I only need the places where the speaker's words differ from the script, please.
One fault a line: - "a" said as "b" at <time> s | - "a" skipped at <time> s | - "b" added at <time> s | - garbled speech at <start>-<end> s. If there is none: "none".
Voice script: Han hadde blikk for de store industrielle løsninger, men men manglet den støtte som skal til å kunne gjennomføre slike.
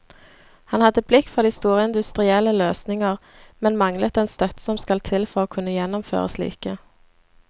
- "men" skipped at 3.8 s
- "for" added at 5.3 s